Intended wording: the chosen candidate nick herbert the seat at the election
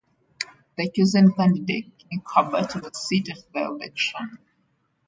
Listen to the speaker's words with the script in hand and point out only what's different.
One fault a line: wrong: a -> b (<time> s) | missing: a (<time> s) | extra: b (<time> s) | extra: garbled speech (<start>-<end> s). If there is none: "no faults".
no faults